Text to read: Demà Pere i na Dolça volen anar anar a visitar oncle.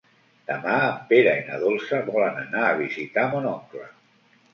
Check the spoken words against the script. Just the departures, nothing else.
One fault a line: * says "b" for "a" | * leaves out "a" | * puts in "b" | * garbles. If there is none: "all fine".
* puts in "en"
* leaves out "anar"
* puts in "mon"